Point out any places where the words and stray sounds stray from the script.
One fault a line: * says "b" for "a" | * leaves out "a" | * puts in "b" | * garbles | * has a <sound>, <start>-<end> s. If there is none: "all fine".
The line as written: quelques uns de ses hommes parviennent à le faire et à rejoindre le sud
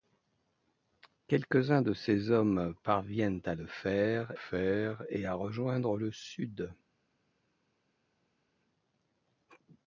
* puts in "faire"